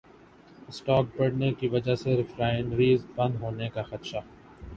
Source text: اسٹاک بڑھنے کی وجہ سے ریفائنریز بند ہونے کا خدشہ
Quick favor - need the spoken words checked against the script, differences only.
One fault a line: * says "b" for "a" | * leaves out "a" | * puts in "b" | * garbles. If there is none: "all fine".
all fine